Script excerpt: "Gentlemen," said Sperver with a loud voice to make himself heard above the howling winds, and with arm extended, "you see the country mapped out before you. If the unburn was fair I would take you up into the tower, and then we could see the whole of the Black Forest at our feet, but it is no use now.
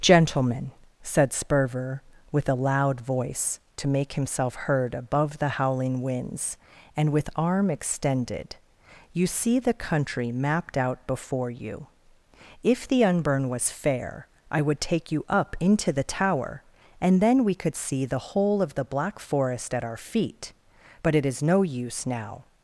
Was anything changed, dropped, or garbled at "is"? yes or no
no